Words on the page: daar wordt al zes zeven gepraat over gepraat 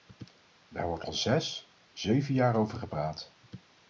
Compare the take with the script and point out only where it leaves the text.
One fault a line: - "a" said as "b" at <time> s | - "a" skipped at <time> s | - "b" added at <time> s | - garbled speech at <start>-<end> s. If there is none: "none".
- "gepraat" said as "jaar" at 2.3 s